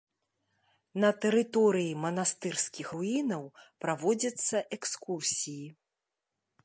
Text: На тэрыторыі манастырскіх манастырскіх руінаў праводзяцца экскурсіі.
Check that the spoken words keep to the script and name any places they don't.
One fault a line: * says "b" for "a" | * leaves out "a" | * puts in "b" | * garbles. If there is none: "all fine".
* leaves out "манастырскіх"